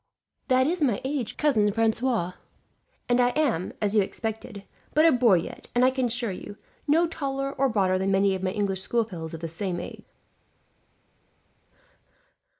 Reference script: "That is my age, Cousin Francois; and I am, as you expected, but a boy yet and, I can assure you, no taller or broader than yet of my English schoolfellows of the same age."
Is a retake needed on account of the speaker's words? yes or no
yes